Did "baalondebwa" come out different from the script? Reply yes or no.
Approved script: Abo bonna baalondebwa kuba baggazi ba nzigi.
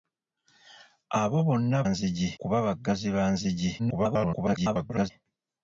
yes